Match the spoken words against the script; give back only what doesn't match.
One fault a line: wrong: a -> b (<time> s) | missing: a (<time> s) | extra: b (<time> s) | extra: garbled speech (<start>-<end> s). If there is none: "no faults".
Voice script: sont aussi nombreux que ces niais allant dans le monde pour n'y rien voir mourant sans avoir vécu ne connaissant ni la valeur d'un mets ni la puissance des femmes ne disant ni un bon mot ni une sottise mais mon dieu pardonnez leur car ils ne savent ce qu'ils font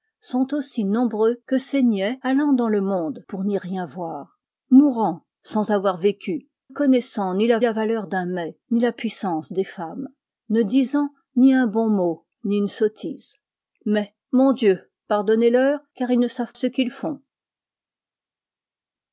missing: ne (6.5 s)
extra: la (7.6 s)